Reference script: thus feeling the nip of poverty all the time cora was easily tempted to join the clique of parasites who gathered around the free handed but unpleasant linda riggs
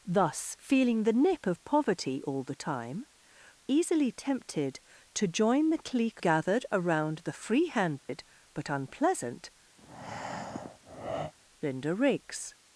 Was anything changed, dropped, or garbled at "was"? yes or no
yes